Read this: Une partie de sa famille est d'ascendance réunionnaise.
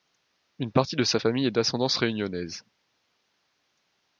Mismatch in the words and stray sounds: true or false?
false